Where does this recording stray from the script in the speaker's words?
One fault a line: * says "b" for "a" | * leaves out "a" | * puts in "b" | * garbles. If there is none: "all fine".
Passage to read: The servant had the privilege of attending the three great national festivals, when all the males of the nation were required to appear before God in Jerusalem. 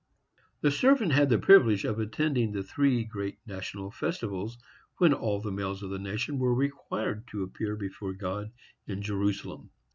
all fine